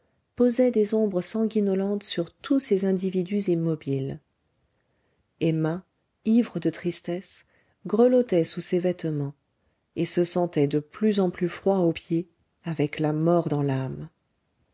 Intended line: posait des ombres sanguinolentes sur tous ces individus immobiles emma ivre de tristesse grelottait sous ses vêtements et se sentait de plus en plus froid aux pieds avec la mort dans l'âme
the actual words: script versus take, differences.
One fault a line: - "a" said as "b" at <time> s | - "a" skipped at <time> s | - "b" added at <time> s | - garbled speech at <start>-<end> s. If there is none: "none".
none